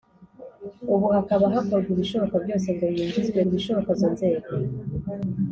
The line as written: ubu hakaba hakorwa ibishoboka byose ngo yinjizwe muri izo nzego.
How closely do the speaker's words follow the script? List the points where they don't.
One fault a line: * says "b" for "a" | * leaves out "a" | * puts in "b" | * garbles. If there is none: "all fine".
* says "ibishoboka" for "muri"